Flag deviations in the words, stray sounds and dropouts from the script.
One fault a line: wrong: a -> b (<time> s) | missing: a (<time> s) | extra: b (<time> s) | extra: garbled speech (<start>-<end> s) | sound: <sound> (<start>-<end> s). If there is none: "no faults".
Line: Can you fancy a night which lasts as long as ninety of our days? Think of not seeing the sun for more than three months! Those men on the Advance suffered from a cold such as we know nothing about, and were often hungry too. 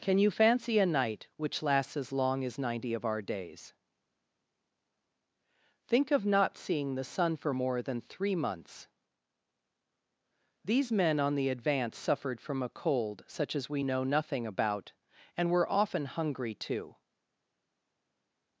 wrong: Those -> These (10.6 s)